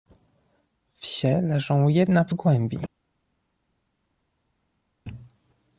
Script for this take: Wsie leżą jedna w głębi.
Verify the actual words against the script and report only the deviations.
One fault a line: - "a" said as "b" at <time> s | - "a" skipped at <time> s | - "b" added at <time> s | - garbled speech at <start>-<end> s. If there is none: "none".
none